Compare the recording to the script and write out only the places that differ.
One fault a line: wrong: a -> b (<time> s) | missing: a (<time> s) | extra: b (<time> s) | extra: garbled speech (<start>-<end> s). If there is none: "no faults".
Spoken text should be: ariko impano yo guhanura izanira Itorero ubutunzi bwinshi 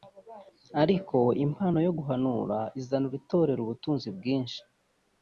no faults